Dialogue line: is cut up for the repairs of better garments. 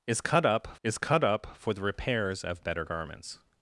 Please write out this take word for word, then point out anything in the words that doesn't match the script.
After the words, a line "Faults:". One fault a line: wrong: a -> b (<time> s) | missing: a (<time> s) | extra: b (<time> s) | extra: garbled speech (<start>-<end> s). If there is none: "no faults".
is cut up is cut up for the repairs of better garments.
Faults:
extra: is cut up (0.8 s)